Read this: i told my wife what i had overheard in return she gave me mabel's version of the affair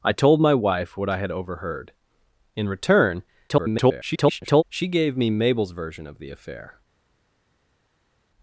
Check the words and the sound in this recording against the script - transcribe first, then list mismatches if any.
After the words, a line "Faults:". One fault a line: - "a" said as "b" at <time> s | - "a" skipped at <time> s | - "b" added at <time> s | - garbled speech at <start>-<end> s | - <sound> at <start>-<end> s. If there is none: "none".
i told my wife what i had overheard in return [garbled] she gave me mabel's version of the affair
Faults:
- garbled speech at 3.5-4.6 s